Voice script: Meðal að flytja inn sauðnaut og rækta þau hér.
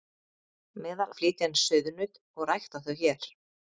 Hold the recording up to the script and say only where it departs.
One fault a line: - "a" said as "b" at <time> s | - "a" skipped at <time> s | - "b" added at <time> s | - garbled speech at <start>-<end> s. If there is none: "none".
none